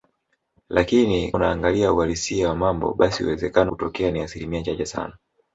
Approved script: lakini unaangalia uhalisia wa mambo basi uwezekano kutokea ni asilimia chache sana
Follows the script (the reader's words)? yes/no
yes